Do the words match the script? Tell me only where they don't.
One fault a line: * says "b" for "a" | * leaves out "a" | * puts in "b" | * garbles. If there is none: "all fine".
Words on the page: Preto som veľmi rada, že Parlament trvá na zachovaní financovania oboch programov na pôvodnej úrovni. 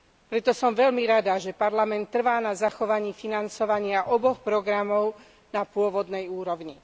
all fine